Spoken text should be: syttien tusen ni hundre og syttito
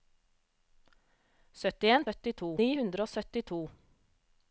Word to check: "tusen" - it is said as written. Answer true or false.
false